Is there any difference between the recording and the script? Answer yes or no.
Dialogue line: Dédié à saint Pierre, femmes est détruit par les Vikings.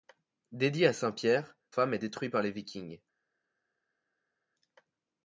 no